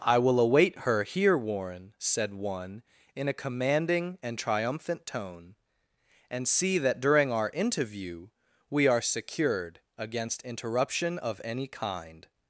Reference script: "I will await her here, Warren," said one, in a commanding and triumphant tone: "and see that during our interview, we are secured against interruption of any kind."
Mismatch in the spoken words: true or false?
false